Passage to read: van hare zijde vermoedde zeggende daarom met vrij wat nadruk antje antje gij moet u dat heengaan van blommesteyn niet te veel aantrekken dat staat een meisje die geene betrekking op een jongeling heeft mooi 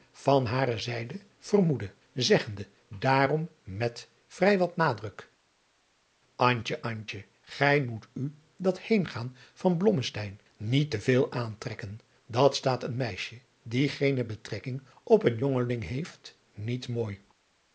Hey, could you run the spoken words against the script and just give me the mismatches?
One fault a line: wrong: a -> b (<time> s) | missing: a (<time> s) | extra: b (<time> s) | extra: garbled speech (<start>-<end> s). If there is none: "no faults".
extra: niet (16.5 s)